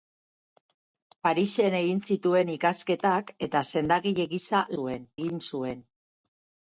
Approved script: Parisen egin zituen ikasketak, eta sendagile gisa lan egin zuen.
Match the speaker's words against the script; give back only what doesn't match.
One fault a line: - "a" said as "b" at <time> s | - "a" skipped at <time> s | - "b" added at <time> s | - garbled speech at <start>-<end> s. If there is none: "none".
- "lan" said as "zuen" at 4.7 s